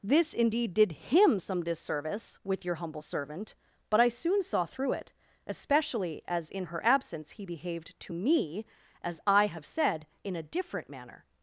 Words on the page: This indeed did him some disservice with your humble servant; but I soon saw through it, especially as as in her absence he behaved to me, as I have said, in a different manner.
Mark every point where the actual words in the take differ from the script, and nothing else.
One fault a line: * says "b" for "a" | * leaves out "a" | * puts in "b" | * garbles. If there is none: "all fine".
* leaves out "as"